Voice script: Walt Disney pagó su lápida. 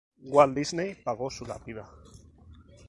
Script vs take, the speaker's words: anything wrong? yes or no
no